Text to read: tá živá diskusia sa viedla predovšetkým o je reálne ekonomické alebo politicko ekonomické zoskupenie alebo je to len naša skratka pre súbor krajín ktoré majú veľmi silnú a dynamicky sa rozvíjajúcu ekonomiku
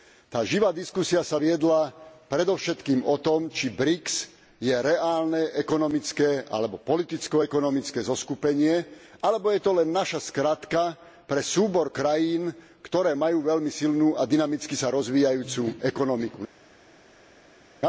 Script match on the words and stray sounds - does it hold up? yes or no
no